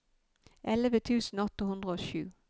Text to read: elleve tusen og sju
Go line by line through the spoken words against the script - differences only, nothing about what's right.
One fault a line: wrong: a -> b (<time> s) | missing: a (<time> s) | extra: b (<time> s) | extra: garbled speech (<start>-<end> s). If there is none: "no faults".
extra: åtte hundre (1.4 s)